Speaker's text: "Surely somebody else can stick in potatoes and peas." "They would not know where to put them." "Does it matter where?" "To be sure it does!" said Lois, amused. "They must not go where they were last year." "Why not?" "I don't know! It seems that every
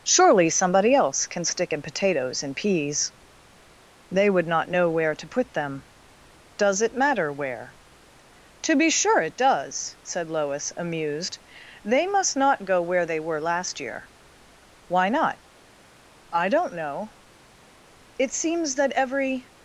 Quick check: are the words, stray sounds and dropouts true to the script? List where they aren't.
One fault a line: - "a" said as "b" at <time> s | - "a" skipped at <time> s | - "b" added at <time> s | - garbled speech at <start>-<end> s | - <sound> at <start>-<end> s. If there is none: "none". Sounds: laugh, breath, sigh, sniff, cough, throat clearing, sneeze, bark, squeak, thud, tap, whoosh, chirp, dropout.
none